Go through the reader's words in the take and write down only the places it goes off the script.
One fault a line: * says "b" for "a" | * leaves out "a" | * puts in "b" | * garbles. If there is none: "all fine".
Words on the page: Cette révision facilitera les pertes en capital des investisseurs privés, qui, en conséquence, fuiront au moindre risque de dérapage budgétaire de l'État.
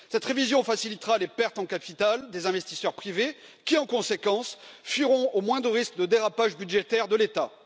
all fine